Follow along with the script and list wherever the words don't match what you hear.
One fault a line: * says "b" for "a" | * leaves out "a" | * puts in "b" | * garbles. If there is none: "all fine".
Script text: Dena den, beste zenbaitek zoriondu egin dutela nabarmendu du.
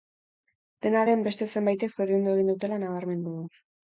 all fine